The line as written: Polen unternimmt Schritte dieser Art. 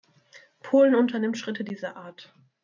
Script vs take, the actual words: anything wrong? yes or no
no